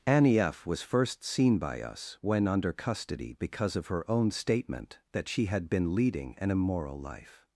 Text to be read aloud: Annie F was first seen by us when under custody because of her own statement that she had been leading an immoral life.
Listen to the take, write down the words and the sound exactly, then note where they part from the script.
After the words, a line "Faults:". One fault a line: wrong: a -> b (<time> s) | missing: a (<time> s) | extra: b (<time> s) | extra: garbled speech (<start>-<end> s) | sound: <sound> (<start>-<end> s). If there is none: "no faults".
Annie F was first seen by us when under custody because of her own statement that she had been leading an immoral life.
Faults:
no faults